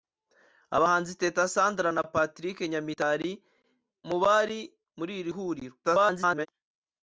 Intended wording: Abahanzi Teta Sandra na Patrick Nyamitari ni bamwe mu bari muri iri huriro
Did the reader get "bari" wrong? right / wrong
right